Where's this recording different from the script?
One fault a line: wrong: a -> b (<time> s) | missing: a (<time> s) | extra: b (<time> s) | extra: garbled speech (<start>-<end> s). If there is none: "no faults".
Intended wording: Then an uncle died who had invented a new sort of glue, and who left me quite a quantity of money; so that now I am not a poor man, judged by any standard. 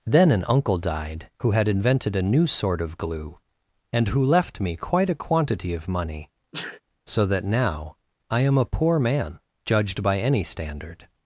missing: not (8.6 s)